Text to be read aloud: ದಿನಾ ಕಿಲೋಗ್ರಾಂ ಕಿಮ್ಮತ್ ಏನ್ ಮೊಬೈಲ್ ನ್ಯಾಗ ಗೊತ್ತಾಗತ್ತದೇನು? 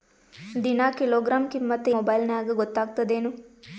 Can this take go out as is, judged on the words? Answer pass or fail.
fail